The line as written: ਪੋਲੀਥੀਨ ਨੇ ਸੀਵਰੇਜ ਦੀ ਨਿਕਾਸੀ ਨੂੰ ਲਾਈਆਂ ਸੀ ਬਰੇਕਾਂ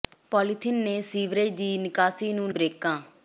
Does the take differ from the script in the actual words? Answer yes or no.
yes